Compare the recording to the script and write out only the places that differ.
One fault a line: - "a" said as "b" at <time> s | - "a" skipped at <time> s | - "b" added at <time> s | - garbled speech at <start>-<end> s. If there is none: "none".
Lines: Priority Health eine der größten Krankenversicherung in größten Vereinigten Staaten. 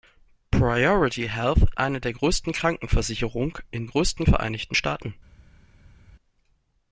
none